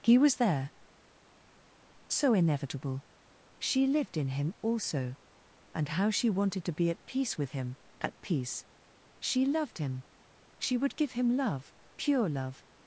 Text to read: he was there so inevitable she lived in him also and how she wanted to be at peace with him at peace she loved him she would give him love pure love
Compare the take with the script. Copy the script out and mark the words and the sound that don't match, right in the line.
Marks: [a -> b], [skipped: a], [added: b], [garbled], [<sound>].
he was there so inevitable she lived in him also and how she wanted to be at peace with him at peace she loved him she would give him love pure love